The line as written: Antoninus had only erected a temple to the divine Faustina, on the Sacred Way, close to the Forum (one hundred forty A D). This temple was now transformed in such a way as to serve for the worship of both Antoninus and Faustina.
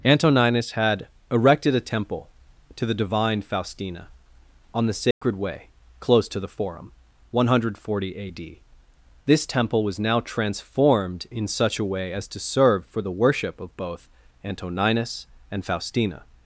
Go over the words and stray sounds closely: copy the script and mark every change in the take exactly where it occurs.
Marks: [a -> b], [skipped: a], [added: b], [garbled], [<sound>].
Antoninus had [skipped: only] erected a temple to the divine Faustina, on the Sacred [dropout] Way, close to the Forum (one hundred forty A D). This temple was now transformed in such a way as to serve for the worship of both Antoninus and Faustina.